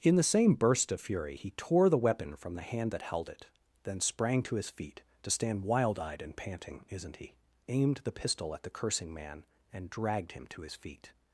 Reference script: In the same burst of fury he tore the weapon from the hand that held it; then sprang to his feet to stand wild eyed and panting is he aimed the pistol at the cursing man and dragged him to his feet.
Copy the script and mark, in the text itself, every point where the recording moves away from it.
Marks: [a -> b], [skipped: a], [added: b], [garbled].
In the same burst of fury he tore the weapon from the hand that held it; then sprang to his feet to stand wild eyed and panting [is -> isn't] he aimed the pistol at the cursing man and dragged him to his feet.